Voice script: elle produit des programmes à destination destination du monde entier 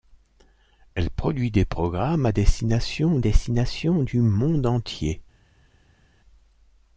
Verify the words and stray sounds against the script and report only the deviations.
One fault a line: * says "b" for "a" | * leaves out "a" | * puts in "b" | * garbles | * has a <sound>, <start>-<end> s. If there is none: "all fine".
all fine